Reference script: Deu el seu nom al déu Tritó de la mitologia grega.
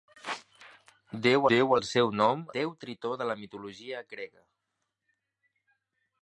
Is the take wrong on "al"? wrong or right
wrong